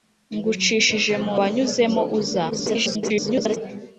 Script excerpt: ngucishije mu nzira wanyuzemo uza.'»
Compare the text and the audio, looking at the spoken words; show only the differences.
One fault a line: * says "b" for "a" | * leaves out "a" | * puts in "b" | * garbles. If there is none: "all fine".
* leaves out "nzira"
* garbles